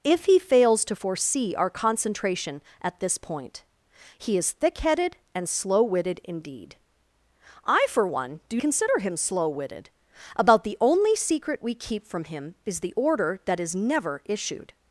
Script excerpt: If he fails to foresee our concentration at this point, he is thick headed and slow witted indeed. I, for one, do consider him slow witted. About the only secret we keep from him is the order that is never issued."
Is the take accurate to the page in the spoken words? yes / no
yes